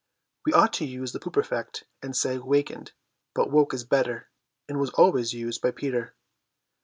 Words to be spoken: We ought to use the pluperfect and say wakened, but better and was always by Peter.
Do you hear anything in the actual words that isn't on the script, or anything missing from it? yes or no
yes